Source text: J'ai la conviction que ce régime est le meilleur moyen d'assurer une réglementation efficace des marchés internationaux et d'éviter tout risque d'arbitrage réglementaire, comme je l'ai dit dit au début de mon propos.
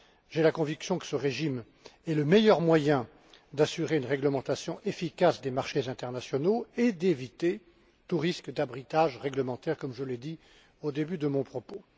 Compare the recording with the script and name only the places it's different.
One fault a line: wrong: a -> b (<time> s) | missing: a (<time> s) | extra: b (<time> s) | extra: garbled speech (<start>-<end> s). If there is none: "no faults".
missing: dit (10.4 s)